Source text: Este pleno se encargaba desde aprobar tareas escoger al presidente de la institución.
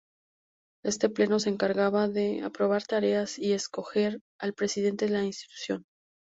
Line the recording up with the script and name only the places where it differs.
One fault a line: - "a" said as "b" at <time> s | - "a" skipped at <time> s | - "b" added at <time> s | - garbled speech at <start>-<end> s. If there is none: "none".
- "desde" said as "de" at 2.1 s
- "y" added at 3.4 s